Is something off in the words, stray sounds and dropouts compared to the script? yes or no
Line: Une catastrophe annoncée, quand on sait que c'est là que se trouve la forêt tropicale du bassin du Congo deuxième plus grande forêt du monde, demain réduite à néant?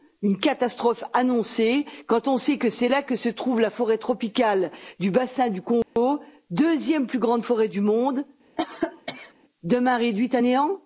yes